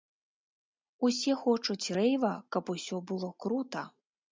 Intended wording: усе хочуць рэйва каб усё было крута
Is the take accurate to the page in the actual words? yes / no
yes